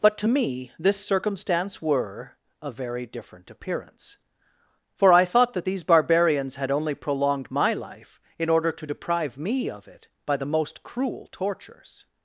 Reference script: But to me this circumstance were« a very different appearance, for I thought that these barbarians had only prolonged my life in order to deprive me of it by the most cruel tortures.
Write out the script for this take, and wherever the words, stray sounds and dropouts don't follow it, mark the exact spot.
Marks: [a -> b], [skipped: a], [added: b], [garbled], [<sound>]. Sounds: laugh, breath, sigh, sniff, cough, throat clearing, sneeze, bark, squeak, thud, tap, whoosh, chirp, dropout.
But to me this circumstance were« a very different appearance, for I thought that these barbarians had only prolonged my life in order to deprive me of it by the most cruel tortures.